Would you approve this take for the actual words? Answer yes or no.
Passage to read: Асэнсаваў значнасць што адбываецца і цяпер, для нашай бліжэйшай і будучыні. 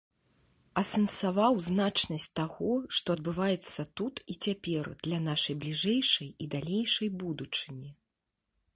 no